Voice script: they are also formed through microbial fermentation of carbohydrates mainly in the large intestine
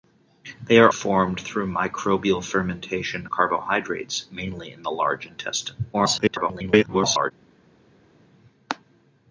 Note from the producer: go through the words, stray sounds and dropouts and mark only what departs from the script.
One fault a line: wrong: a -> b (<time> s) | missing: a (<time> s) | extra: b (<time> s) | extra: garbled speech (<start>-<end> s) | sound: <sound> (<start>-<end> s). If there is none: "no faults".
missing: also (0.9 s)
missing: of (3.3 s)
extra: garbled speech (5.9-7.3 s)